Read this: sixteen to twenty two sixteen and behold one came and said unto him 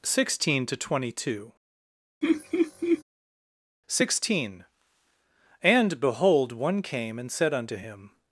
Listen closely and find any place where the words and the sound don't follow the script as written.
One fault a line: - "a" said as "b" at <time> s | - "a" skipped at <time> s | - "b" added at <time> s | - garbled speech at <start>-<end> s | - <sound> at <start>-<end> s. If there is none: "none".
- laugh at 2.2-3.0 s